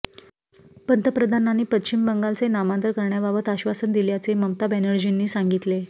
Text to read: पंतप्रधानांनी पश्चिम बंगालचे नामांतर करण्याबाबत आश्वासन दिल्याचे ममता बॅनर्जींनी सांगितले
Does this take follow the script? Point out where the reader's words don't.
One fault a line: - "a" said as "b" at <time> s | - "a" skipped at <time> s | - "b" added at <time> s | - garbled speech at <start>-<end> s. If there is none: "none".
none